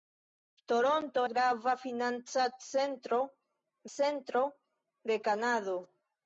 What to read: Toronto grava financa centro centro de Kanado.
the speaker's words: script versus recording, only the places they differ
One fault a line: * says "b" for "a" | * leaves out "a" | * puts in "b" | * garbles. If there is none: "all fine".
all fine